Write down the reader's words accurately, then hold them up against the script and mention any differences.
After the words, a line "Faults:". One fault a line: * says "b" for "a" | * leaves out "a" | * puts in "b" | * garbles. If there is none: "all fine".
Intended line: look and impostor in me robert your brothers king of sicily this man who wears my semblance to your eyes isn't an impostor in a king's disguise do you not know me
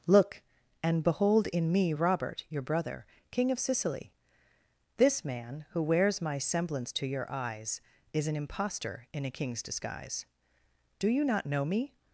look and behold in me robert your brother king of sicily this man who wears my semblance to your eyes is an impostor in a king's disguise do you not know me
Faults:
* says "behold" for "impostor"
* says "brother" for "brothers"
* says "is" for "isn't"